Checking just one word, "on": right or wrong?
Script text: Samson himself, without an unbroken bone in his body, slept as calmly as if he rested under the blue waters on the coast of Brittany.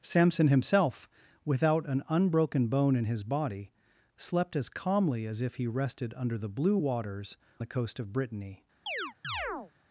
wrong